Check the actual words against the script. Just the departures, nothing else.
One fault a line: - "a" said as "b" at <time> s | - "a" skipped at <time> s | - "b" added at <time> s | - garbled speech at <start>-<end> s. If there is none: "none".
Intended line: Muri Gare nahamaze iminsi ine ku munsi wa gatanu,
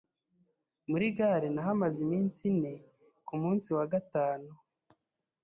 none